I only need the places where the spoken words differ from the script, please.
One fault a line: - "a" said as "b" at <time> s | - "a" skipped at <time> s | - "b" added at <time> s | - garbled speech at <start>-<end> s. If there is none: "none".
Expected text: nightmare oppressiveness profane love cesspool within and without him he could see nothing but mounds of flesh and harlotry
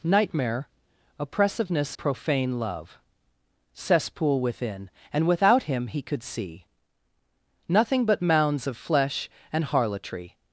none